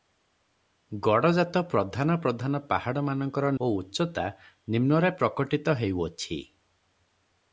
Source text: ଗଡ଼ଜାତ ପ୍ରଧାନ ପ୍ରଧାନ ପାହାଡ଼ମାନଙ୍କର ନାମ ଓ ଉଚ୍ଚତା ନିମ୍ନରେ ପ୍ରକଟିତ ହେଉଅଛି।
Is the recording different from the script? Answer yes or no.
yes